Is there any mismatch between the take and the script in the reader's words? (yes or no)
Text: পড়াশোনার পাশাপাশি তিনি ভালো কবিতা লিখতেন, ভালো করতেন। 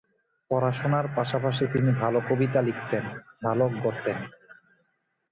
no